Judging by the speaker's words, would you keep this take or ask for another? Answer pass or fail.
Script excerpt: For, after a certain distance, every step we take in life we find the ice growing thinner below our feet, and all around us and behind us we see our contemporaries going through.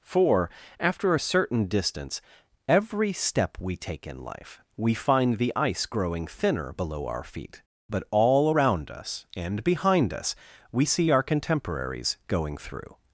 fail